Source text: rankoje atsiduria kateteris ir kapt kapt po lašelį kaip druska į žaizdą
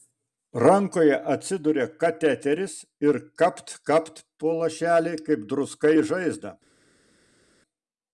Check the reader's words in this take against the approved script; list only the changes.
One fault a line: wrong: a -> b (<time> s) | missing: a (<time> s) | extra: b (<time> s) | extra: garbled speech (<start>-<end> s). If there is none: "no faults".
no faults